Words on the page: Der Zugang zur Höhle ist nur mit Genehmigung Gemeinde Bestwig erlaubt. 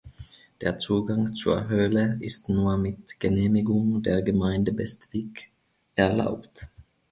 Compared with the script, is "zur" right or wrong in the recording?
right